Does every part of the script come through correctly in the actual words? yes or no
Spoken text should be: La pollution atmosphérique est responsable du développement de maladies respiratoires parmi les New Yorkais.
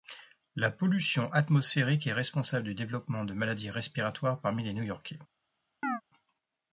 yes